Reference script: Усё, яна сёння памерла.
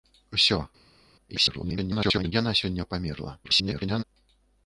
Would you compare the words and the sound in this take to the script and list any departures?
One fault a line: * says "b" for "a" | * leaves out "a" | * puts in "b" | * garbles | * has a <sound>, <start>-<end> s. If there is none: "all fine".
* garbles
* garbles